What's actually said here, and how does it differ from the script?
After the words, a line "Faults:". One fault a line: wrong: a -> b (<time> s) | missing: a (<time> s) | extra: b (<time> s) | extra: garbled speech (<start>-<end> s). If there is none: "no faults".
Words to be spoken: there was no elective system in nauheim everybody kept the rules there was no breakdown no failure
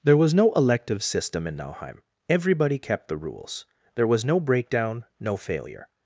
there was no elective system in nauheim everybody kept the rules there was no breakdown no failure
Faults:
no faults